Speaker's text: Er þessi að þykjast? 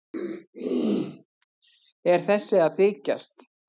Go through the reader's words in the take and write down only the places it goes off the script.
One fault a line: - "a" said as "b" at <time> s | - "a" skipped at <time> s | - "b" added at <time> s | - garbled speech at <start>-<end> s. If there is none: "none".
none